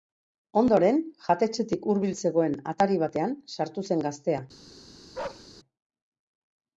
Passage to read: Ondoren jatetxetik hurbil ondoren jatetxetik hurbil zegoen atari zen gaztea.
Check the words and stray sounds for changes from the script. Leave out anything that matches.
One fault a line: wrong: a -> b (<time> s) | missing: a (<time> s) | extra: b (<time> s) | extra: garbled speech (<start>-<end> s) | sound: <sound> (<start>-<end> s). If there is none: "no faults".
wrong: ondoren jatetxetik hurbil zegoen atari -> zegoen atari batean sartu (2.2 s)
sound: bark (5.1-5.5 s)